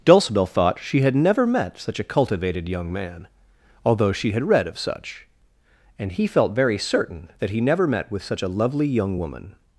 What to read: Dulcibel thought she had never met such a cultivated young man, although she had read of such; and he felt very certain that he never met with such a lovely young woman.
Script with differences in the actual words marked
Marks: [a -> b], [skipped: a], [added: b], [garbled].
Dulcibel thought she had never met such a cultivated young man, although she had read of such; and he felt very certain that he never met with such a lovely young woman.